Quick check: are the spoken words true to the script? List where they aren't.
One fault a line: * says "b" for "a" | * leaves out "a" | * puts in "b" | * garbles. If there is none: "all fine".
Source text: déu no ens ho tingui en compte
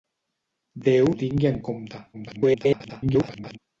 * leaves out "no ens"
* garbles